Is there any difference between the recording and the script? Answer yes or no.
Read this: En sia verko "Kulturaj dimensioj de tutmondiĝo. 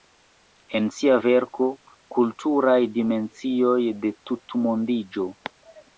no